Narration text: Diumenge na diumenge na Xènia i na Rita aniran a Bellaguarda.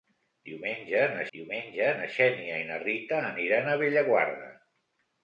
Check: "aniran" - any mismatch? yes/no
no